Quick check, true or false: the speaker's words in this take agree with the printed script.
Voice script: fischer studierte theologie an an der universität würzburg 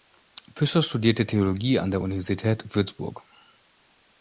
false